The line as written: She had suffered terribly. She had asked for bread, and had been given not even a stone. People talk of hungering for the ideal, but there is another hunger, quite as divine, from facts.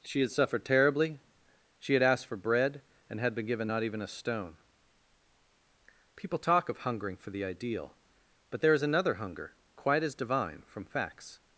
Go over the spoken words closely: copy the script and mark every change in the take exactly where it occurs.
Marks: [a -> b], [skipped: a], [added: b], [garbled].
She had suffered terribly. She had asked for bread, and had been given not even a stone. People talk of hungering for the ideal, but there is another hunger, quite as divine, from facts.